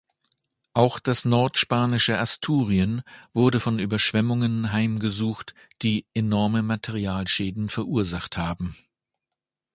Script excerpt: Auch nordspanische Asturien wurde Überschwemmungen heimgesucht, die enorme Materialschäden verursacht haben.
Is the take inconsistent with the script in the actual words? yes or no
yes